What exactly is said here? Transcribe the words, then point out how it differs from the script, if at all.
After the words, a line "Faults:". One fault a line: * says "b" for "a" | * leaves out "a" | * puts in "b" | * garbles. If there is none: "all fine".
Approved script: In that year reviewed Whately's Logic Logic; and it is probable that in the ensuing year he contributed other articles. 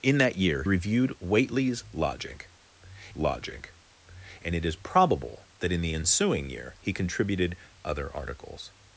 In that year reviewed Whately's Logic Logic; and it is probable that in the ensuing year he contributed other articles.
Faults:
all fine